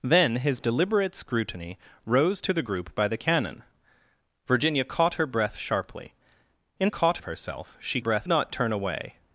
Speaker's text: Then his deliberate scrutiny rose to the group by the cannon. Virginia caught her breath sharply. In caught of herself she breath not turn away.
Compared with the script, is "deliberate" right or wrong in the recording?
right